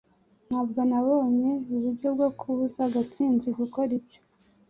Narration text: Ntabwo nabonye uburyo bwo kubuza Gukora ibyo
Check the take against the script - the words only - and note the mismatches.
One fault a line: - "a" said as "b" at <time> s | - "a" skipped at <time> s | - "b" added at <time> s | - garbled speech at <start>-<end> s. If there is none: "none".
- "Gatsinzi" added at 2.9 s